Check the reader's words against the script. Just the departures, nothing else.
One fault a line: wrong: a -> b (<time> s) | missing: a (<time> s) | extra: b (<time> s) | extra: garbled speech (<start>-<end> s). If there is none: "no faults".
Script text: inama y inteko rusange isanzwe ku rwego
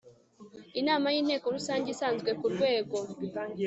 no faults